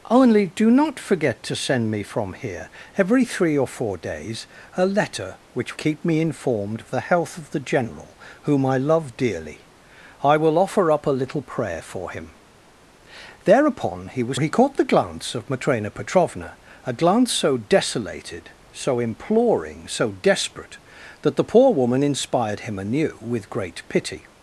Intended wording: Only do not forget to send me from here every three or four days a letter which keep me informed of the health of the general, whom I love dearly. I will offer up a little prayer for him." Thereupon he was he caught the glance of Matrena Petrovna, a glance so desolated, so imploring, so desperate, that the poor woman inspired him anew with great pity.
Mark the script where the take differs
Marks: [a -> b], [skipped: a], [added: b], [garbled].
Only do not forget to send me from here every three or four days a letter which keep me informed of the health of the general, whom I love dearly. I will offer up a little prayer for him." Thereupon he was he caught the glance of Matrena Petrovna, a glance so desolated, so imploring, so desperate, that the poor woman inspired him anew with great pity.